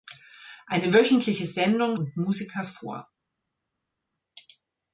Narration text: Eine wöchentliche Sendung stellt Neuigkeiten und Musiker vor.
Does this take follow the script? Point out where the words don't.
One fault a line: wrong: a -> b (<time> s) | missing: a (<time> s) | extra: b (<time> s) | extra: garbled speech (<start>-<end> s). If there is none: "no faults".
missing: stellt Neuigkeiten (2.0 s)